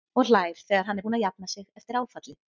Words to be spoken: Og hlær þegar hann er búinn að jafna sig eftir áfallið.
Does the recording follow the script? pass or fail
pass